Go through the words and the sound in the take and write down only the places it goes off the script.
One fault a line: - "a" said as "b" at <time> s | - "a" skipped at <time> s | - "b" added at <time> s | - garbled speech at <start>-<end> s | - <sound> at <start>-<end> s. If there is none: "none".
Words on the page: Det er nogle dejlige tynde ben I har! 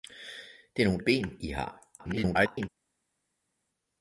- "dejlige tynde" skipped at 1.0 s
- garbled speech at 2.0-2.7 s